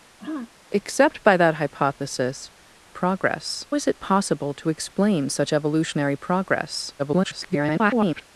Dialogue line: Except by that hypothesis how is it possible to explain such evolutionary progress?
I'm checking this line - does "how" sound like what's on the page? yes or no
no